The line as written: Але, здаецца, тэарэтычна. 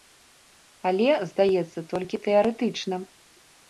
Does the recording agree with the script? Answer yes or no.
no